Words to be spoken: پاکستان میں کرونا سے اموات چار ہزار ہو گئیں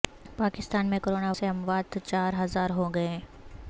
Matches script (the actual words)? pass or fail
pass